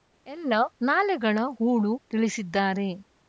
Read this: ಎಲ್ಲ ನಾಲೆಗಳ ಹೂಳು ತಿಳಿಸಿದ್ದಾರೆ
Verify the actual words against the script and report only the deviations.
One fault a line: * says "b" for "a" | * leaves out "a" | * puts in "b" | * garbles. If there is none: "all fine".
all fine